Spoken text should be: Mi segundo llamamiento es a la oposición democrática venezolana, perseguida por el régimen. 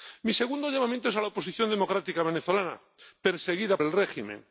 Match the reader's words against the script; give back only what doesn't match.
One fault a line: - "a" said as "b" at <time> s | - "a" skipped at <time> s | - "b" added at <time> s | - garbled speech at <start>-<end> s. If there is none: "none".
- "por" skipped at 3.8 s